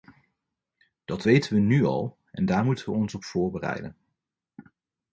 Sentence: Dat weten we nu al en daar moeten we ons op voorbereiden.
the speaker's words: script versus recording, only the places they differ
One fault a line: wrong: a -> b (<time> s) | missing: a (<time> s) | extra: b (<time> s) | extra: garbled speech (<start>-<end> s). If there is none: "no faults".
no faults